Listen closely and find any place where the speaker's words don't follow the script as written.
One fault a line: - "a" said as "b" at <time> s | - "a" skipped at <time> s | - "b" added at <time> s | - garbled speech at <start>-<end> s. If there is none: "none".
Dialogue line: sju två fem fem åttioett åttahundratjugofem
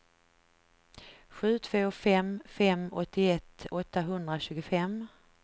none